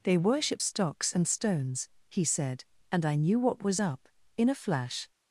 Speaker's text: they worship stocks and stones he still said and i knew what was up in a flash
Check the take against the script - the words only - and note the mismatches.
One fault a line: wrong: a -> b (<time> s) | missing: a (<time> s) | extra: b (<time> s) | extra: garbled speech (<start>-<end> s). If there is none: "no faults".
missing: still (2.2 s)